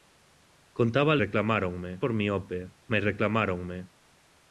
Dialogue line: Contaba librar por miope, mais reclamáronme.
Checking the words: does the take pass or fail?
fail